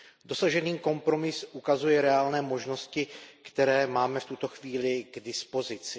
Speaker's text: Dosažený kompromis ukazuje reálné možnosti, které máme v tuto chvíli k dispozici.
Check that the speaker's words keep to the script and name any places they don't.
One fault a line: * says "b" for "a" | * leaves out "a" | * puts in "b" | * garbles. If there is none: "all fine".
all fine